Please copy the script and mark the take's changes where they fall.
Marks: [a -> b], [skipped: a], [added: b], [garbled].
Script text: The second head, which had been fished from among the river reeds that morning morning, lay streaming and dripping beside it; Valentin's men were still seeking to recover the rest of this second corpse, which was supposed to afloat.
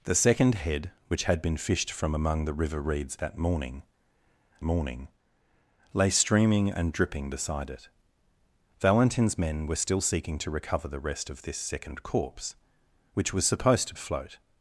The second head, which had been fished from among the river reeds that morning morning, lay streaming and dripping beside it; Valentin's men were still seeking to recover the rest of this second corpse, which was supposed to afloat.